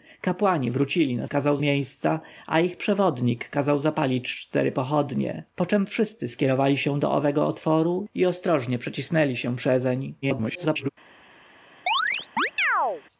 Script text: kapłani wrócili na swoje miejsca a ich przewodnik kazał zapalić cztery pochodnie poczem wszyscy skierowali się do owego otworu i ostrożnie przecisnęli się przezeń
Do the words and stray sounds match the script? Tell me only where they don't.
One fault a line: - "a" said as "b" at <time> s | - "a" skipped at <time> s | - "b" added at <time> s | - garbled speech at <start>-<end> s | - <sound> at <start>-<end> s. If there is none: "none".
- "swoje" said as "kazał" at 1.3 s
- garbled speech at 10.2-10.9 s
- chirp at 11.9-13.0 s